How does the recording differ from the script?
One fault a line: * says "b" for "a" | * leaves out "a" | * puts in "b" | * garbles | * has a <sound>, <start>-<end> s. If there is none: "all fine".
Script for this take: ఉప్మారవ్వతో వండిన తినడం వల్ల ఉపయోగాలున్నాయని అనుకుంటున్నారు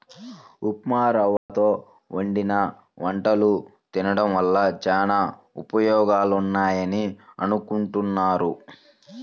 * has a dropout, 1.4-1.5 s
* puts in "వంటలు"
* puts in "చానా"